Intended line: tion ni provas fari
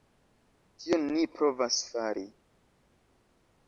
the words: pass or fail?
pass